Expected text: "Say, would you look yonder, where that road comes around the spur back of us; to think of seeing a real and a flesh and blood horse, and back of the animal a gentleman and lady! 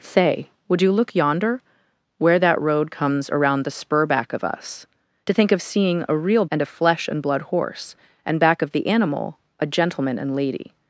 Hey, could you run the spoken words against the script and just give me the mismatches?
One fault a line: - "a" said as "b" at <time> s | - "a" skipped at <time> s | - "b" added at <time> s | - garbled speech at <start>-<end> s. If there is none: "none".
none